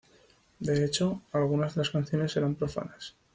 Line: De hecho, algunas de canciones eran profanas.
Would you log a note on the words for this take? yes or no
yes